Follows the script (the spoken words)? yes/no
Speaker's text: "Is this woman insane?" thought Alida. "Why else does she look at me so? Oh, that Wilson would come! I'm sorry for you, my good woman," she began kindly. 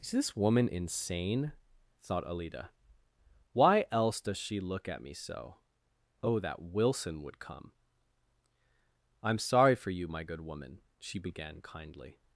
yes